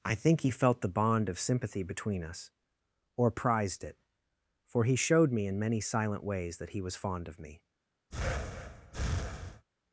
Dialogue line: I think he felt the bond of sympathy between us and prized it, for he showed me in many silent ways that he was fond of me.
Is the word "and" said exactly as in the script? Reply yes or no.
no